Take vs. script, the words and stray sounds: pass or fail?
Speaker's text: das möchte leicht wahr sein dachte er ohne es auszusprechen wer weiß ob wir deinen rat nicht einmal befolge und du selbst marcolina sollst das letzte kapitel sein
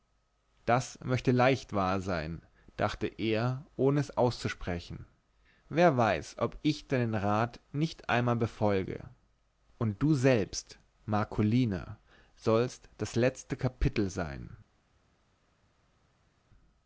fail